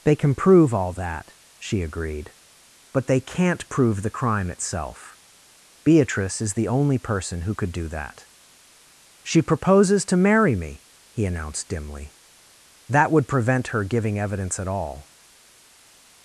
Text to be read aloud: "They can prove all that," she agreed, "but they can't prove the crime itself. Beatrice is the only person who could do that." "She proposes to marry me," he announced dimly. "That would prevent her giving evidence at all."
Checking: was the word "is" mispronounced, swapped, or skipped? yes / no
no